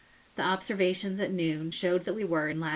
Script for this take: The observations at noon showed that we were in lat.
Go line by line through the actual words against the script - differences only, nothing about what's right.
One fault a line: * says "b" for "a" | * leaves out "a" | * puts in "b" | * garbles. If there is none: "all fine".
all fine